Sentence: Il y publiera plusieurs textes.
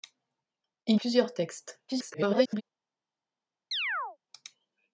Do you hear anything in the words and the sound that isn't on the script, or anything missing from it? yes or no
yes